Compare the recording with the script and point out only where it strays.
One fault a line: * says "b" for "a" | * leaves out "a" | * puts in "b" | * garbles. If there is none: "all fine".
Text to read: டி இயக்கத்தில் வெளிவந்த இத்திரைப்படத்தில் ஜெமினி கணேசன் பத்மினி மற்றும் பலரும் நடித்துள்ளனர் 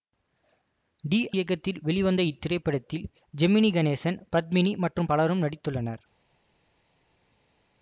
all fine